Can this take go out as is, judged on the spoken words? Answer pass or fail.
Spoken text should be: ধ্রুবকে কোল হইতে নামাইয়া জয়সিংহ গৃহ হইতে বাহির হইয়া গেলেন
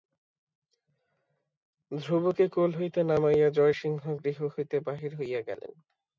pass